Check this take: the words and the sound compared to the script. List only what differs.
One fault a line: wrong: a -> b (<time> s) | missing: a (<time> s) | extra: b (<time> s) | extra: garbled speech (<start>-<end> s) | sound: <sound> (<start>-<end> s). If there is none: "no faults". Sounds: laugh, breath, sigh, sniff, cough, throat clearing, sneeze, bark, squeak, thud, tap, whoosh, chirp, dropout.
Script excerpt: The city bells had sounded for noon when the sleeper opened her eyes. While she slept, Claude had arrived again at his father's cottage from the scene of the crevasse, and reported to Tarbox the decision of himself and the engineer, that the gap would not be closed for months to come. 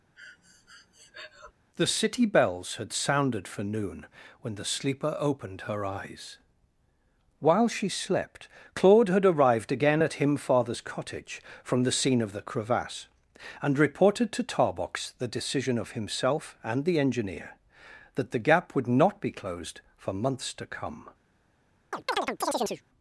sound: breath (0.2-1.5 s)
wrong: his -> him (10.2 s)
sound: chirp (21.9-22.8 s)